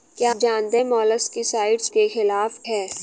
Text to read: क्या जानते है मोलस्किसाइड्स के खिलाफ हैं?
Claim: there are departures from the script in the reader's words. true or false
false